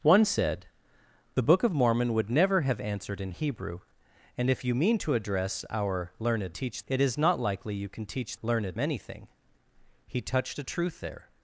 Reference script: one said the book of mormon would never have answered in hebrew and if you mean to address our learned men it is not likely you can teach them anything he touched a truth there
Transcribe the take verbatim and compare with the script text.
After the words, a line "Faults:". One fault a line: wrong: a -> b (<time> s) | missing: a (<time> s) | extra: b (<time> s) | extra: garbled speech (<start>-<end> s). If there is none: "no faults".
one said the book of mormon would never have answered in hebrew and if you mean to address our learned teach it is not likely you can teach learned anything he touched a truth there
Faults:
wrong: men -> teach (6.5 s)
wrong: them -> learned (8.4 s)